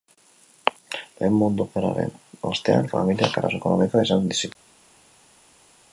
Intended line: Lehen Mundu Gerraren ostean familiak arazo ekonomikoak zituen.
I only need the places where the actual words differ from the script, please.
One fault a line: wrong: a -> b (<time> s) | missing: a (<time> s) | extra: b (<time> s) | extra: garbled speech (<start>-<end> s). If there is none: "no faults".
extra: izan (4.1 s)